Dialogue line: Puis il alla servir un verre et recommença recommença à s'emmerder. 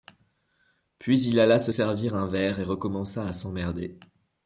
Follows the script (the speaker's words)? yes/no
no